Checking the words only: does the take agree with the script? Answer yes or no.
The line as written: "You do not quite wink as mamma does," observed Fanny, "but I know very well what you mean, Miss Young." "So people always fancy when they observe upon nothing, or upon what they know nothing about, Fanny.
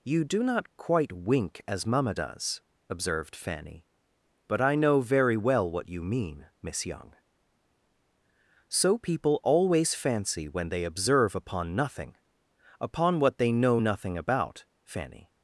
no